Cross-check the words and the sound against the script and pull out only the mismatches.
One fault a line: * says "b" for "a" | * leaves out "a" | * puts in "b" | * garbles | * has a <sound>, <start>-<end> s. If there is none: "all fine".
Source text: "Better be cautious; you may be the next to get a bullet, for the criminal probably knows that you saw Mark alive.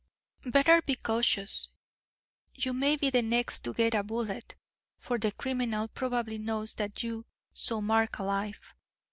all fine